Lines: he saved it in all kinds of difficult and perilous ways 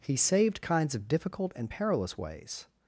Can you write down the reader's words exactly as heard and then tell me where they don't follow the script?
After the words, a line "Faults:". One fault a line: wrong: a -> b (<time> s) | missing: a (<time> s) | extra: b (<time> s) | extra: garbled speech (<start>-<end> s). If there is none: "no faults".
he saved kinds of difficult and perilous ways
Faults:
missing: it in all (0.6 s)